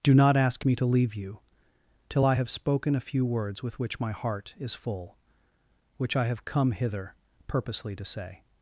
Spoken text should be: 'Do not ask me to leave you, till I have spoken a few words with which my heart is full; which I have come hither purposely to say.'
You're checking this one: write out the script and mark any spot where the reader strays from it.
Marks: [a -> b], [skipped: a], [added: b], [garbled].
'Do not ask me to leave you, till I have spoken a few words with which my heart is full; which I have come hither purposely to say.'